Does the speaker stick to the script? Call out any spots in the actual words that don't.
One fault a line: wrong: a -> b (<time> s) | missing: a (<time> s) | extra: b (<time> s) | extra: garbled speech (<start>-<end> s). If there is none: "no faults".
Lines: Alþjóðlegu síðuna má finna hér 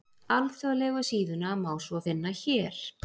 extra: svo (1.9 s)